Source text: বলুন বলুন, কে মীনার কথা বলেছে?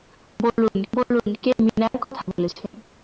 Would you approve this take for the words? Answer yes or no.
yes